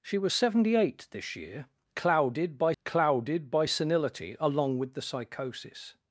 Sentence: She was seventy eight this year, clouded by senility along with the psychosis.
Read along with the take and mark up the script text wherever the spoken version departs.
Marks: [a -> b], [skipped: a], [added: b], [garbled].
She was seventy eight this year, clouded by [added: clouded by] senility along with the psychosis.